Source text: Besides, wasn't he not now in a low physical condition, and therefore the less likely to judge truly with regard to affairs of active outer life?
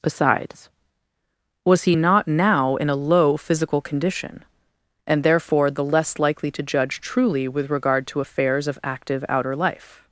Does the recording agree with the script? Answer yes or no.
no